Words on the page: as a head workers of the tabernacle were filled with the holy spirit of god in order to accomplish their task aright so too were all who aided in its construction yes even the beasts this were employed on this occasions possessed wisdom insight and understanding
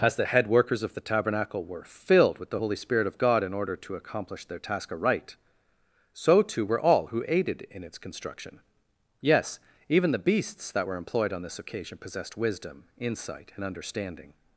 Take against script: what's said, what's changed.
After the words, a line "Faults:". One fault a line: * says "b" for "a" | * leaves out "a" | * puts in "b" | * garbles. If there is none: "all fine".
as the head workers of the tabernacle were filled with the holy spirit of god in order to accomplish their task aright so too were all who aided in its construction yes even the beasts that were employed on this occasion possessed wisdom insight and understanding
Faults:
* says "the" for "a"
* says "that" for "this"
* says "occasion" for "occasions"